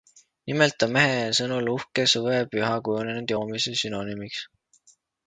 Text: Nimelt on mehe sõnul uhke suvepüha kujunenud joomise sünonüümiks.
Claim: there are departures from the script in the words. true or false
false